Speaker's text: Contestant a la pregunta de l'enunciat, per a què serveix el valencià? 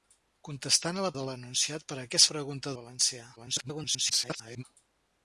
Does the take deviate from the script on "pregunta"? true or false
true